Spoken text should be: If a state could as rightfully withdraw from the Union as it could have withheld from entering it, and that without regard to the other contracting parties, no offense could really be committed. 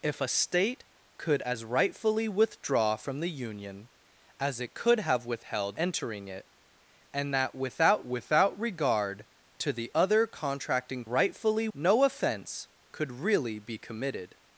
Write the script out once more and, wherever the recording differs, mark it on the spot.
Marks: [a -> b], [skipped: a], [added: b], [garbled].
If a state could as rightfully withdraw from the Union as it could have withheld [skipped: from] entering it, and that without [added: without] regard to the other contracting [parties, -> rightfully] no offense could really be committed.